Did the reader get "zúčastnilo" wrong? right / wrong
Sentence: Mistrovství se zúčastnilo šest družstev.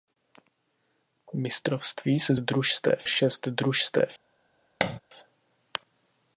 wrong